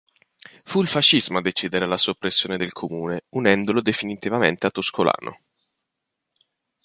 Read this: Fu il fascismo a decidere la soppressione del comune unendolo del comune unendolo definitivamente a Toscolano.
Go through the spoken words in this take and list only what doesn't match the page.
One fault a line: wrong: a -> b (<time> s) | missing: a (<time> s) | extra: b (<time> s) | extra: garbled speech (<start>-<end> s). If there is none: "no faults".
missing: del comune unendolo (3.8 s)